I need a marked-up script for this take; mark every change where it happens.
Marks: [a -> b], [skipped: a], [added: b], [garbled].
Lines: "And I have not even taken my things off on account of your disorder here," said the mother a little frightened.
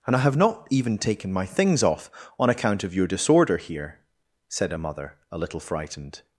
"And I have not even taken my things off on account of your disorder here," said [the -> a] mother a little frightened.